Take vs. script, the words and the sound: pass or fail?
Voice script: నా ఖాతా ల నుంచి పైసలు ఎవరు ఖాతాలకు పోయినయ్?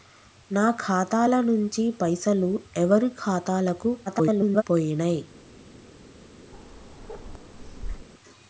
fail